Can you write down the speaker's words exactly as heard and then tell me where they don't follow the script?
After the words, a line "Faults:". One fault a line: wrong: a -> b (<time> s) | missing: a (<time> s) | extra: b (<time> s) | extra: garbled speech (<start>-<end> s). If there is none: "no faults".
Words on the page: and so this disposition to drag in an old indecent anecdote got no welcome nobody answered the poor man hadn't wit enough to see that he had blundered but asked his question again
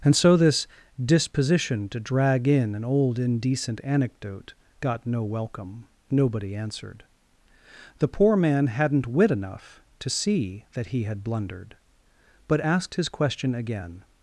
and so this disposition to drag in an old indecent anecdote got no welcome nobody answered the poor man hadn't wit enough to see that he had blundered but asked his question again
Faults:
no faults